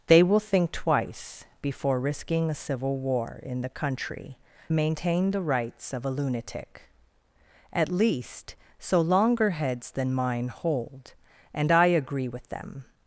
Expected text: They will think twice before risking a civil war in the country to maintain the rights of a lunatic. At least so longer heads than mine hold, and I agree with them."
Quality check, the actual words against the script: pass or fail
fail